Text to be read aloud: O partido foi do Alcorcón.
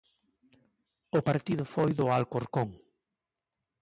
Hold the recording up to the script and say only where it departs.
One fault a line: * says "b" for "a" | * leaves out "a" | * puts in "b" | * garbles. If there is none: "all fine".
all fine